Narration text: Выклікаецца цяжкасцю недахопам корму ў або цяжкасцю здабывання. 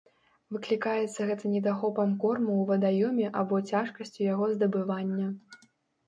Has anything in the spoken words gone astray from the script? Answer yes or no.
yes